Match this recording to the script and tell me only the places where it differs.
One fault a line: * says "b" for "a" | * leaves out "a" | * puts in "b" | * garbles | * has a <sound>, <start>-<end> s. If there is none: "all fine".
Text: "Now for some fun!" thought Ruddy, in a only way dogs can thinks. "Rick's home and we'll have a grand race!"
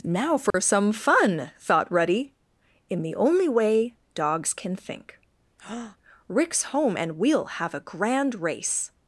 * has a dropout, 0.5-0.5 s
* says "the" for "a"
* says "think" for "thinks"
* has a breath, 5.6-6.0 s